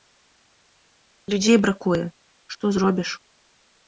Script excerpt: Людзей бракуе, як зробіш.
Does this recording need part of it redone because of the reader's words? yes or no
yes